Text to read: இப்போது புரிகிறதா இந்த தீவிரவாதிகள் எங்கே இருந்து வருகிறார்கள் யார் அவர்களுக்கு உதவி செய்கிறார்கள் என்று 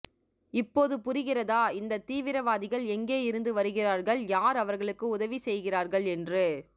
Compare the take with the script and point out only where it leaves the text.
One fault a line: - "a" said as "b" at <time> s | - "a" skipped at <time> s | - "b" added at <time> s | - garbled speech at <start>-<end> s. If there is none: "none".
none